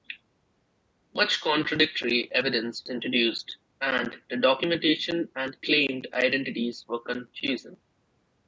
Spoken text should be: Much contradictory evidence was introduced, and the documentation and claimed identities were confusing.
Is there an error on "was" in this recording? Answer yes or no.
yes